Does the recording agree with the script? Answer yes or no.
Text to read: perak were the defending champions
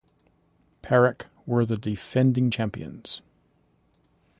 yes